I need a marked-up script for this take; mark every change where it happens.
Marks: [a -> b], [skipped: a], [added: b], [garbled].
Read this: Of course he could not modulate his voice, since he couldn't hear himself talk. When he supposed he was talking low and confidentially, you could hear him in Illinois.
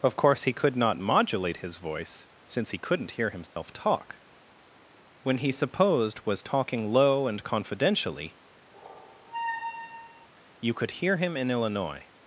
Of course he could not modulate his voice, since he couldn't hear himself talk. When he supposed [skipped: he] was talking low and confidentially, you could hear him in Illinois.